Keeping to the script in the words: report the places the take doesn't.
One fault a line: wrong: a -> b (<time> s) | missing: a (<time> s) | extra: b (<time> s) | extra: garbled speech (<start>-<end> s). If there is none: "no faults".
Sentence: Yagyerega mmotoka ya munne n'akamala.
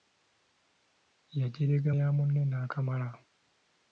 missing: mmotoka (1.9 s)